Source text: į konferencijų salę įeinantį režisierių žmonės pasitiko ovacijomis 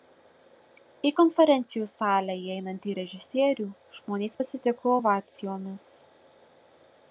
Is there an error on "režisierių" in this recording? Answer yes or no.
no